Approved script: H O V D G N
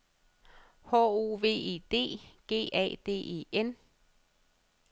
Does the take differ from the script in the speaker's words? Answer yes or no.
yes